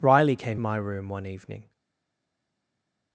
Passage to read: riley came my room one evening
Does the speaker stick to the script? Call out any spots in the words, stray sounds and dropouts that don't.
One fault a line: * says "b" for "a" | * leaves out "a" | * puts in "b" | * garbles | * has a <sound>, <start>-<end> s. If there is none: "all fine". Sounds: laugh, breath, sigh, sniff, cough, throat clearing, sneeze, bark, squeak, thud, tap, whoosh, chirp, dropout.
all fine